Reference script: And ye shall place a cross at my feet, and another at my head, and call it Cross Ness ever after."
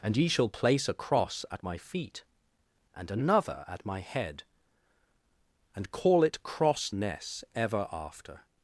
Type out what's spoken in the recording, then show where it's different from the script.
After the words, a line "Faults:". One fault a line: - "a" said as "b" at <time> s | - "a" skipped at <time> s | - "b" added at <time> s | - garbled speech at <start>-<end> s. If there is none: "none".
And ye shall place a cross at my feet, and another at my head, and call it Cross Ness ever after."
Faults:
none